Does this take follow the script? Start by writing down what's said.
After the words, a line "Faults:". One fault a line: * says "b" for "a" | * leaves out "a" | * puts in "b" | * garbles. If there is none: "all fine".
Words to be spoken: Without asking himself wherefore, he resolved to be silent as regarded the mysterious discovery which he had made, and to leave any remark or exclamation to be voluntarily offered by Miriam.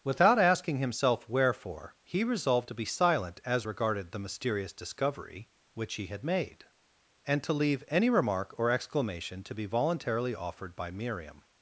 Without asking himself wherefore, he resolved to be silent as regarded the mysterious discovery which he had made, and to leave any remark or exclamation to be voluntarily offered by Miriam.
Faults:
all fine